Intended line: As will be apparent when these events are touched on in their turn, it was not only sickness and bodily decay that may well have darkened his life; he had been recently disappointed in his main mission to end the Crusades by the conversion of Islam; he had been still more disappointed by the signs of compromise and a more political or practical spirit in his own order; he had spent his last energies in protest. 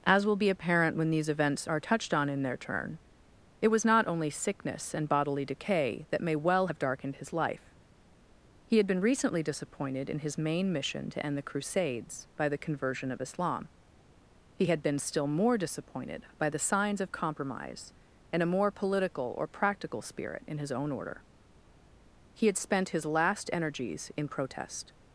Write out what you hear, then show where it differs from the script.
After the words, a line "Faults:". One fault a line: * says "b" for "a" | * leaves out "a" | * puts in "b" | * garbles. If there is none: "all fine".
As will be apparent when these events are touched on in their turn, it was not only sickness and bodily decay that may well have darkened his life; he had been recently disappointed in his main mission to end the Crusades by the conversion of Islam; he had been still more disappointed by the signs of compromise and a more political or practical spirit in his own order; he had spent his last energies in protest.
Faults:
all fine